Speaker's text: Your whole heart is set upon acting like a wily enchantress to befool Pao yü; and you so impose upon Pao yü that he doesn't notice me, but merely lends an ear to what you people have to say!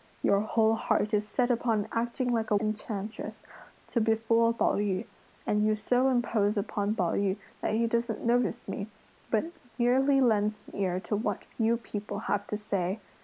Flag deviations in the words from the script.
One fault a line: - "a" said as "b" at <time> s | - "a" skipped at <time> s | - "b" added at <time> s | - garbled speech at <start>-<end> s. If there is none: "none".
- "wily" skipped at 2.5 s